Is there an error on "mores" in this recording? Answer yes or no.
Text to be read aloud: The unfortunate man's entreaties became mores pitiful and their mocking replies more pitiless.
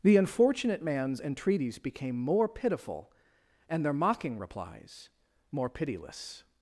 yes